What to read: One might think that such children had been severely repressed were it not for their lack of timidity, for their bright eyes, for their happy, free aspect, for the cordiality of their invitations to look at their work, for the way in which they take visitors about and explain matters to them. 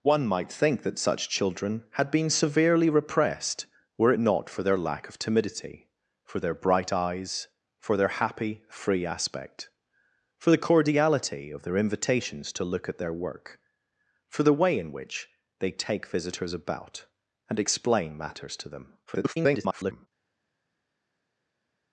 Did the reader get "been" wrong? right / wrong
right